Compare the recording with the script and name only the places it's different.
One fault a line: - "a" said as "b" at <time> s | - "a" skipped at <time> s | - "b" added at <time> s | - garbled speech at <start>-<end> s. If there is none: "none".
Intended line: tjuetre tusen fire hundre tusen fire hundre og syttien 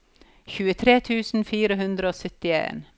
- "tusen fire hundre" skipped at 2.1 s